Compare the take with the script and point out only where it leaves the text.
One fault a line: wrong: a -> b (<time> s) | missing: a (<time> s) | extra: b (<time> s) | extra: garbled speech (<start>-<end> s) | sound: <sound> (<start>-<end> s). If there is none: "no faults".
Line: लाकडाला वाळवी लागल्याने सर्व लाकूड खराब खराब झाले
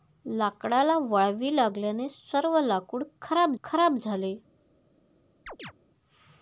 sound: chirp (5.5-5.7 s)